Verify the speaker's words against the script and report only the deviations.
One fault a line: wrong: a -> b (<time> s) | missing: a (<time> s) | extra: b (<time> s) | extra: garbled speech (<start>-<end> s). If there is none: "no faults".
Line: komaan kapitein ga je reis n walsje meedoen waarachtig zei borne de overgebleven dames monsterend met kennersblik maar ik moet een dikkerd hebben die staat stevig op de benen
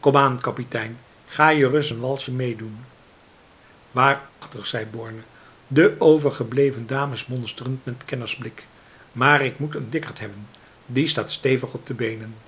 no faults